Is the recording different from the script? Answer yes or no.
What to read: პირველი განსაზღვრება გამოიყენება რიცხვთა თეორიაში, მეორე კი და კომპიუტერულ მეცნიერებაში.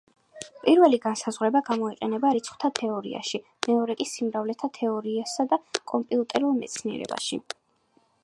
yes